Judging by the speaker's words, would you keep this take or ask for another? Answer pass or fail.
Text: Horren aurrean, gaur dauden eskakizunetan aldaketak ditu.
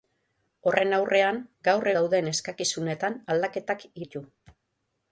pass